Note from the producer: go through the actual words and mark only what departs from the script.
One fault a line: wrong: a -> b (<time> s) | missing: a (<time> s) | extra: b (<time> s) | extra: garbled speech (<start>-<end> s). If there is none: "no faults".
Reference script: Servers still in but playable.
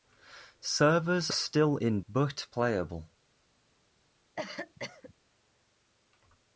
no faults